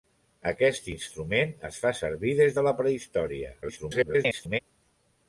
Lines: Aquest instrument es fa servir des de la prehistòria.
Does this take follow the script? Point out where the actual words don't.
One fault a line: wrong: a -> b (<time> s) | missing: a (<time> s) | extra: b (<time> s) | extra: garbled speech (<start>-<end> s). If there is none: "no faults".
extra: garbled speech (3.6-4.6 s)